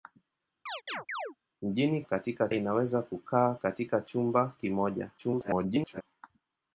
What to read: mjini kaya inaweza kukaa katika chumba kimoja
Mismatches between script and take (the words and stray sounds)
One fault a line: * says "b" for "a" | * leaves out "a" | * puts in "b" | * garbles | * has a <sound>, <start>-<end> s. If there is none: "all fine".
* has a chirp, 0.7-1.4 s
* says "katika" for "kaya"
* garbles